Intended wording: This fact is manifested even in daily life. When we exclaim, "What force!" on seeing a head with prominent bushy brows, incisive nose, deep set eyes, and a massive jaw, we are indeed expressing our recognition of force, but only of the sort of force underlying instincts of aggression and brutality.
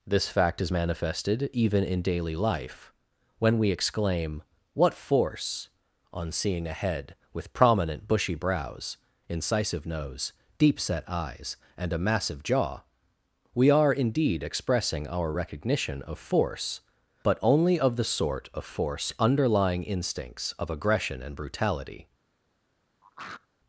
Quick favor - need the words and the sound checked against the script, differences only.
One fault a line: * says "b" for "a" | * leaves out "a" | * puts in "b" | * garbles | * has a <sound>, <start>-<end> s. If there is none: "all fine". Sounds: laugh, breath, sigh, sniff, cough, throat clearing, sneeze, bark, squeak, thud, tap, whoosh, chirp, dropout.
* has a throat clearing, 23.0-23.5 s